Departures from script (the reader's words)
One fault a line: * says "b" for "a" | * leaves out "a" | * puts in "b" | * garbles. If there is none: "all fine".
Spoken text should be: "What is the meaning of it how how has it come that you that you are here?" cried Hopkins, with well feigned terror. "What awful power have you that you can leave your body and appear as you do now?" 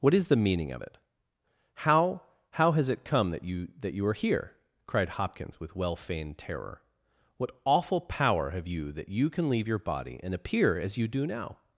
all fine